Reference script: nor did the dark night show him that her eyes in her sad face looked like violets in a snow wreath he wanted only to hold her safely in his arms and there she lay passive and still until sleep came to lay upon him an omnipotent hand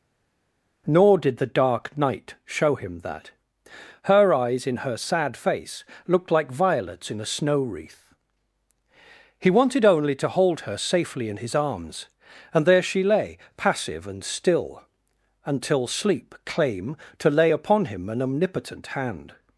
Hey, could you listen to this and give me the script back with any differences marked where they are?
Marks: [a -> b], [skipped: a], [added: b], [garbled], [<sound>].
nor did the dark night show him that her eyes in her sad face looked like violets in a snow wreath he wanted only to hold her safely in his arms and there she lay passive and still until sleep [came -> claim] to lay upon him an omnipotent hand